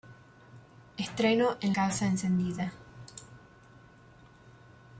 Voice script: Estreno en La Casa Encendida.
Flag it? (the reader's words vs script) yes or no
yes